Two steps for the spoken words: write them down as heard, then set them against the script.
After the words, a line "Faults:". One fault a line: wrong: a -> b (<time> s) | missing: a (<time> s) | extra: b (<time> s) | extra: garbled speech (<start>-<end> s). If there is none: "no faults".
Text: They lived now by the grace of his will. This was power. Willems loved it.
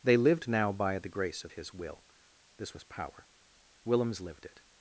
They lived now by the grace of his will. This was power. Willems lived it.
Faults:
wrong: loved -> lived (4.2 s)